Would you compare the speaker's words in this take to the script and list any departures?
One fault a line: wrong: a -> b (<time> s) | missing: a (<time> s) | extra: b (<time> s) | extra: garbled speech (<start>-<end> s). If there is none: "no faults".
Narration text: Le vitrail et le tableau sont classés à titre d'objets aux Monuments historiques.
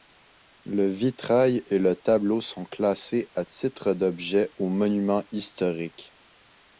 no faults